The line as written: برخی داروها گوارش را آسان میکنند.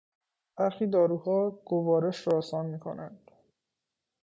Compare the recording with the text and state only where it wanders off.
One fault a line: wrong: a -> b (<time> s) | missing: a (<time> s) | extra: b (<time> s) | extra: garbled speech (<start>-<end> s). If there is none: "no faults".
no faults